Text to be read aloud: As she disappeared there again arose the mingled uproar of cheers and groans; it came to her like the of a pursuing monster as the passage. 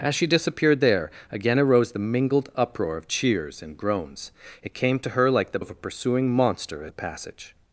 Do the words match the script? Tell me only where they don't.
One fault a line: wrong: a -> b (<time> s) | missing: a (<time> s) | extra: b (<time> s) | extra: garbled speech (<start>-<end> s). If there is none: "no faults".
no faults